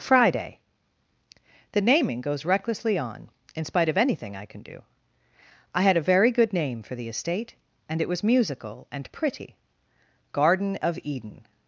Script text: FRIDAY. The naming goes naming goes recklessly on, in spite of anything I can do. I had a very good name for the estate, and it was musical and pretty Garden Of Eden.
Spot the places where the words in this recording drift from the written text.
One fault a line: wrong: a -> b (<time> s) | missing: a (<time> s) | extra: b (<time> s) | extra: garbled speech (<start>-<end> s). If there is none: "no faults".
missing: naming goes (2.4 s)